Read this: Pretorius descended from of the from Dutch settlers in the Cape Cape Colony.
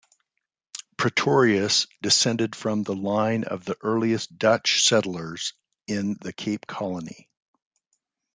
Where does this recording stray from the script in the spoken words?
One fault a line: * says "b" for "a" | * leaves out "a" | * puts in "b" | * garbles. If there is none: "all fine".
* puts in "the line"
* says "earliest" for "from"
* leaves out "Cape"